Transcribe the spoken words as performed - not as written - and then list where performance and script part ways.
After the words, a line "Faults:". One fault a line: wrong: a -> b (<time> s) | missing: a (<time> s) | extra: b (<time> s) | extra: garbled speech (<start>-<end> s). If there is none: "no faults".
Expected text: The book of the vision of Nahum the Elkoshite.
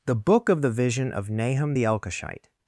The book of the vision of Nahum the Elkoshite.
Faults:
no faults